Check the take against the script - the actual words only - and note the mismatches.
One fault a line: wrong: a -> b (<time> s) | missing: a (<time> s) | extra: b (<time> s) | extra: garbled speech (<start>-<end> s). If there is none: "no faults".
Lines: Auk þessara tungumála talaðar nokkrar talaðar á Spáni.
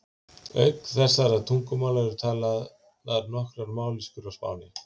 extra: eru (2.1 s)
wrong: talaðar -> mállýskur (3.8 s)